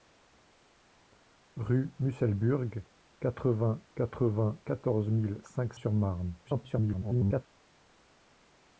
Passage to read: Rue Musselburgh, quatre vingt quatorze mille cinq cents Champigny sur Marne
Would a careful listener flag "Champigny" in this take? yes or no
yes